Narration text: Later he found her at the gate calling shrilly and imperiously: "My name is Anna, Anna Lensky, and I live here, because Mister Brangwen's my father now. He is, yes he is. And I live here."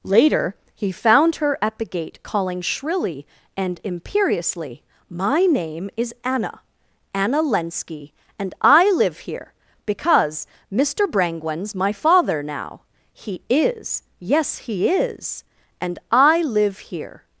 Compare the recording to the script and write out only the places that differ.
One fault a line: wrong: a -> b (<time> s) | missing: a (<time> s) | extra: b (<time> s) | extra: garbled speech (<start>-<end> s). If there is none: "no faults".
no faults